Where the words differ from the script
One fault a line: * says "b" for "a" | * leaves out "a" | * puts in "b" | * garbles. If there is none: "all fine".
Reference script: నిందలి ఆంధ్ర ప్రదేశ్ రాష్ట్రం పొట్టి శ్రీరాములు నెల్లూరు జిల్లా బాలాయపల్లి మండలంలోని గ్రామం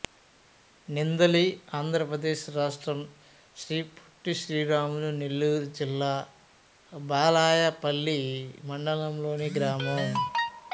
* puts in "శ్రీ"